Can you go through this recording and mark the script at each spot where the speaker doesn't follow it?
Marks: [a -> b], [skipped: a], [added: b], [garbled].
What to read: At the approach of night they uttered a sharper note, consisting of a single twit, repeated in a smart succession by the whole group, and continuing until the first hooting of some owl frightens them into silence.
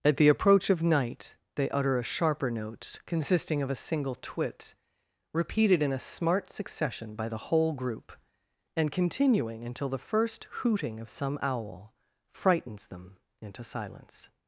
At the approach of night they [uttered -> utter] a sharper note, consisting of a single twit, repeated in a smart succession by the whole group, and continuing until the first hooting of some owl frightens them into silence.